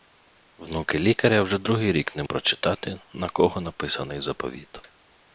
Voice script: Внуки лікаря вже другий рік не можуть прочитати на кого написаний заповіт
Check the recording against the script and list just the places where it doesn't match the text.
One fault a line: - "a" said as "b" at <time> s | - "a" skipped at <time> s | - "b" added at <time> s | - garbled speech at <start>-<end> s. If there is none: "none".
- "можуть" skipped at 2.2 s